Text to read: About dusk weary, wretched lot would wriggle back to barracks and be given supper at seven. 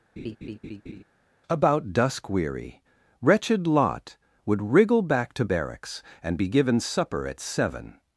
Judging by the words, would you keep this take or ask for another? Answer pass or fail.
pass